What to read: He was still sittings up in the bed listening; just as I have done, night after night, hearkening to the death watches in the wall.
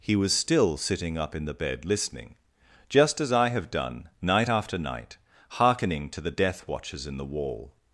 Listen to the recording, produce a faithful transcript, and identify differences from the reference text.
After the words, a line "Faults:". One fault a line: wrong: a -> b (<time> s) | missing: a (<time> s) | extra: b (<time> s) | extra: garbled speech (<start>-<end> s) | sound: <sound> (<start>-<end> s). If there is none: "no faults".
He was still sitting up in the bed listening; just as I have done, night after night, hearkening to the death watches in the wall.
Faults:
wrong: sittings -> sitting (0.8 s)